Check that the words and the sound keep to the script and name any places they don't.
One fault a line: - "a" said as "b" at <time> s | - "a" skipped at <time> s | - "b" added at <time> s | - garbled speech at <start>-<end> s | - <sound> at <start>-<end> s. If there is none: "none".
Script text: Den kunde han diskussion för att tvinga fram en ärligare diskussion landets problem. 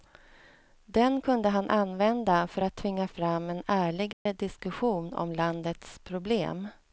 - "diskussion" said as "använda" at 1.7 s
- dropout at 4.1-4.3 s
- "om" added at 5.1 s